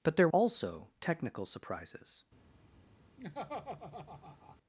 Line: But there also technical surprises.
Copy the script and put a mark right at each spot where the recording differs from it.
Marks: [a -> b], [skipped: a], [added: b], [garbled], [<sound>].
But there also technical surprises. [laugh]